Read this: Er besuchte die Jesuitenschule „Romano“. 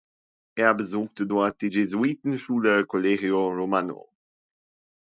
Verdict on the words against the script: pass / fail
fail